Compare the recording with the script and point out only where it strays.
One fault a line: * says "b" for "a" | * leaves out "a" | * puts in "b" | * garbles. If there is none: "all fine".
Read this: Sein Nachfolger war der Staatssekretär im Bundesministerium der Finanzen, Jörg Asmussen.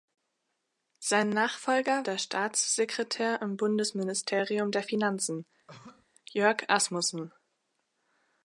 * leaves out "war"